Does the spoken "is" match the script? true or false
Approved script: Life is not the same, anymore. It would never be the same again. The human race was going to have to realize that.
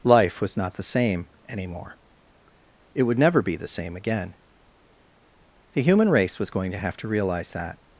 false